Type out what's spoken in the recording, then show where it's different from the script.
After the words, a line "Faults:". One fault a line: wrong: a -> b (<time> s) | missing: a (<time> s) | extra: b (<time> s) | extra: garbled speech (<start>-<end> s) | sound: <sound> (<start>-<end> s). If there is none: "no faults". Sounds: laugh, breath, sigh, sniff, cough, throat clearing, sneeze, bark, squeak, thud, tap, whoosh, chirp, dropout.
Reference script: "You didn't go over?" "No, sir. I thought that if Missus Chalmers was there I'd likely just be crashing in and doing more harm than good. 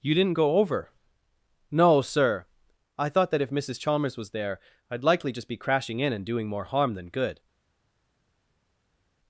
"You didn't go over?" "No, sir. I thought that if Missus Chalmers was there I'd likely just be crashing in and doing more harm than good.
Faults:
no faults